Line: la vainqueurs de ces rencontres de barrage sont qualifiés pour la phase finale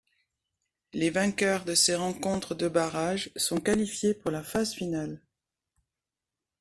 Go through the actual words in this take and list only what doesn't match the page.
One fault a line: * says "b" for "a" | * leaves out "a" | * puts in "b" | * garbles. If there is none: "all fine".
* says "les" for "la"